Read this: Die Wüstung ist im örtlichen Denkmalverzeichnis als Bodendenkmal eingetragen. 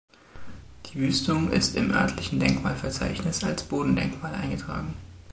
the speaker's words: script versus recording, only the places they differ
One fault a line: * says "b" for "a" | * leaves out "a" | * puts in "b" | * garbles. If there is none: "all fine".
all fine